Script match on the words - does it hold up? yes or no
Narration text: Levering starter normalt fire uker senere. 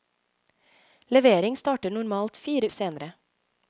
no